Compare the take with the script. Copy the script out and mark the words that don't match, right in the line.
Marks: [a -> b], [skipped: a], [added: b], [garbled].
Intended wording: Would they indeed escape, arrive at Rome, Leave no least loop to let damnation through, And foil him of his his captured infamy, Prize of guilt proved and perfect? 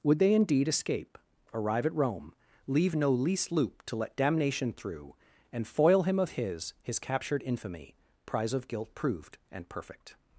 Would they indeed escape, arrive at Rome, Leave no least loop to let damnation through, And foil him of his his captured infamy, Prize of guilt proved and perfect?